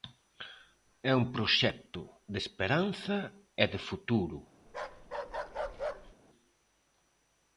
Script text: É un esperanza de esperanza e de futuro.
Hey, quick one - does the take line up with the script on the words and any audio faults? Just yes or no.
no